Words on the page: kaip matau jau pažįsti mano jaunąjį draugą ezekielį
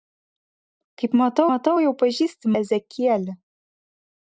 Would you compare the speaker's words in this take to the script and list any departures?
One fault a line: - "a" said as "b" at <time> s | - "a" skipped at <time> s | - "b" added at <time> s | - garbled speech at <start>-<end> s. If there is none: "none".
- "matau" added at 1.5 s
- "mano jaunąjį draugą" skipped at 2.5 s